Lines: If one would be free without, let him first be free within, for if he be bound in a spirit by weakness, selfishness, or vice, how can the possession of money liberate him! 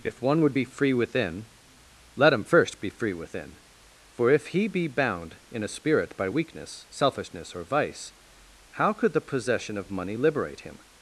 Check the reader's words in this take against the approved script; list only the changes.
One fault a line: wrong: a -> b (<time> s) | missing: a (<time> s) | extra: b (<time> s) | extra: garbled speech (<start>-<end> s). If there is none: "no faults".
wrong: without -> within (0.9 s)
wrong: can -> could (8.9 s)